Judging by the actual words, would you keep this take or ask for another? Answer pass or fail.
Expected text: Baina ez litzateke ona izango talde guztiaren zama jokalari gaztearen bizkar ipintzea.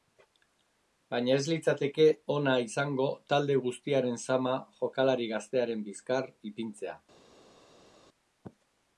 pass